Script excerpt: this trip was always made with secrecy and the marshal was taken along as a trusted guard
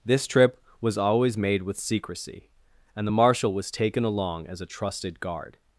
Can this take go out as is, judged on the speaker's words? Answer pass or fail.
pass